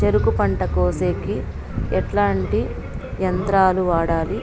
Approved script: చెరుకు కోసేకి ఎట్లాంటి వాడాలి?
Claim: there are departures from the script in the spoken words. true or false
true